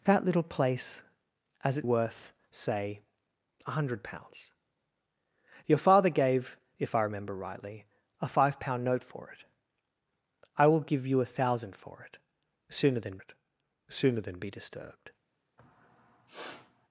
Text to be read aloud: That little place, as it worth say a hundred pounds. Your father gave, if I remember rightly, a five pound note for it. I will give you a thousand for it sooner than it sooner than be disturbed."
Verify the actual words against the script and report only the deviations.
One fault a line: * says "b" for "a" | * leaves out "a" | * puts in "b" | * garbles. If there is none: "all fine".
all fine